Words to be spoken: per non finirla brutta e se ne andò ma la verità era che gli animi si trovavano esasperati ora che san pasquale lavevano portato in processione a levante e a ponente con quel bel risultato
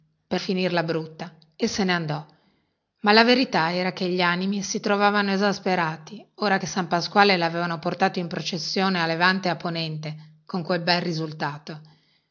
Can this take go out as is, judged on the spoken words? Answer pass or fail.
fail